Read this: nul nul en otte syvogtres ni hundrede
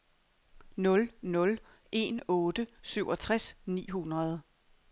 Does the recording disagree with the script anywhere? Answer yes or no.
no